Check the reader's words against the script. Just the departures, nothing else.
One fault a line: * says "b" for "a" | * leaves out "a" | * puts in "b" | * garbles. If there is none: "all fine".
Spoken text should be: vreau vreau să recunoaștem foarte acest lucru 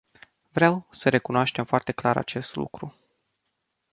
* leaves out "vreau"
* puts in "clar"